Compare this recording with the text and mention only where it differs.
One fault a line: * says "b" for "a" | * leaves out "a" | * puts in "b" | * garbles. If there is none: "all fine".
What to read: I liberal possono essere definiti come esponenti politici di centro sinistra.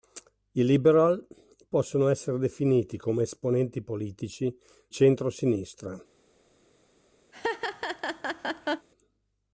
* leaves out "di"